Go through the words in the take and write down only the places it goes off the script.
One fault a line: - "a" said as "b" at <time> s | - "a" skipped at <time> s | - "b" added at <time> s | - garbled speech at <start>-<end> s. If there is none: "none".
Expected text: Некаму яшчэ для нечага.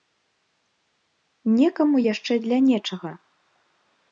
none